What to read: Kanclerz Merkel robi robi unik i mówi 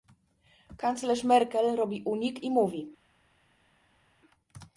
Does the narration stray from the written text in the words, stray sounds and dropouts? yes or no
yes